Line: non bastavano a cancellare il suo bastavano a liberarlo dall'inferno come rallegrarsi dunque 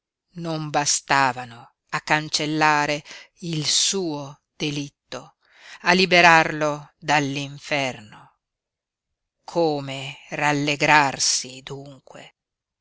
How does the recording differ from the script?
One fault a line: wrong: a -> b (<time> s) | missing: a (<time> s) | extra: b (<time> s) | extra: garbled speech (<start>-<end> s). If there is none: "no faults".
wrong: bastavano -> delitto (4.6 s)